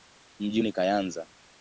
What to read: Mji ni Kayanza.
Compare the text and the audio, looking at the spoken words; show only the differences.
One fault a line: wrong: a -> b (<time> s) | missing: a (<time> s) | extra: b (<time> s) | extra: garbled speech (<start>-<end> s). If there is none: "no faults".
no faults